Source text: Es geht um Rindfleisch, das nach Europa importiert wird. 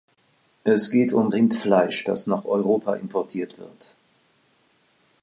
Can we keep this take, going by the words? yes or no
yes